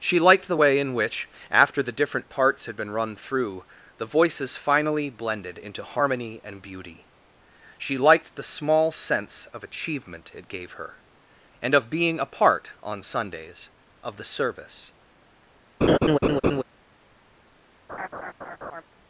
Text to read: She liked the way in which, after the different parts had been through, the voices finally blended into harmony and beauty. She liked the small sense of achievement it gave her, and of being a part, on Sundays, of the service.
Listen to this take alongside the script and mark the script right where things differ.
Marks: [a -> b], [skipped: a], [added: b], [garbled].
She liked the way in which, after the different parts had been [added: run] through, the voices finally blended into harmony and beauty. She liked the small sense of achievement it gave her, and of being a part, on Sundays, of the service.